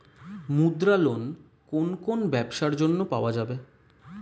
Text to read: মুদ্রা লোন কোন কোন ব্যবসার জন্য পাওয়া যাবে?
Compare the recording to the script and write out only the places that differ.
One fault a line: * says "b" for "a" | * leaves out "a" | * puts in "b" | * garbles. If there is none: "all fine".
all fine